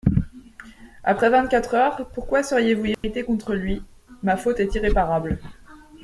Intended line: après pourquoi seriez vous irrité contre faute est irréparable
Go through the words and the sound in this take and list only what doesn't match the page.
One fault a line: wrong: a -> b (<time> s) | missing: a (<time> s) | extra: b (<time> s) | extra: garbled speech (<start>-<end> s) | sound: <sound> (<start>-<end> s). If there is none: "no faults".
extra: vingt quatre heures (1.3 s)
sound: dropout (2.9-3.0 s)
extra: lui ma (3.5 s)